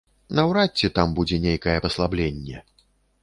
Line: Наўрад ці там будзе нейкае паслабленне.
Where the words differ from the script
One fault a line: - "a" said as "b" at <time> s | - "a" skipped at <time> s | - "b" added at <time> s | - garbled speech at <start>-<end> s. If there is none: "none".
none